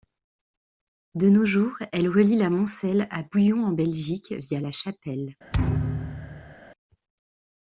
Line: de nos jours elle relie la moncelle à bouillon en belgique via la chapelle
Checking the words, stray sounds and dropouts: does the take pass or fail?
fail